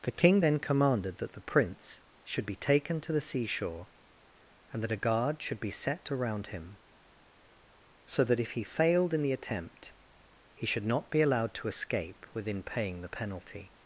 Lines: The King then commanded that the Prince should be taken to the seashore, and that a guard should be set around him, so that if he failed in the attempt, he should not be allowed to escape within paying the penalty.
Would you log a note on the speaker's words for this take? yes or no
no